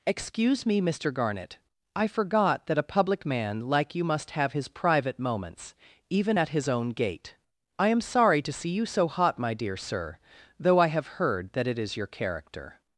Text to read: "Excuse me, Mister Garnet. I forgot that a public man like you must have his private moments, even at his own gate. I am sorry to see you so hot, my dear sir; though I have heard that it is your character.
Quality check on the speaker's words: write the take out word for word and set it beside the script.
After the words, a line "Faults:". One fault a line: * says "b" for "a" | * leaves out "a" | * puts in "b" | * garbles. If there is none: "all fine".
"Excuse me, Mister Garnet. I forgot that a public man like you must have his private moments, even at his own gate. I am sorry to see you so hot, my dear sir; though I have heard that it is your character.
Faults:
all fine